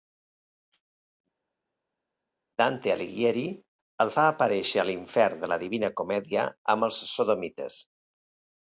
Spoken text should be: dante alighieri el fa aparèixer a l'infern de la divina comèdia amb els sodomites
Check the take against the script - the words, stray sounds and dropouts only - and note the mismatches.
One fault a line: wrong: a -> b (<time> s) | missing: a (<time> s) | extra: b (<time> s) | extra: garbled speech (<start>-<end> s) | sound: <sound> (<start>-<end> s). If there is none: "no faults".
no faults